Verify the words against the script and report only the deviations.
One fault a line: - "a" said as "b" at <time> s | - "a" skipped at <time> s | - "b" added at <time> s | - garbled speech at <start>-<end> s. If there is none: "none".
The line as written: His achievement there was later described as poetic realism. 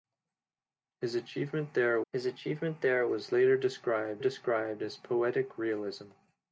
- "his achievement there" added at 2.1 s
- "described" added at 4.2 s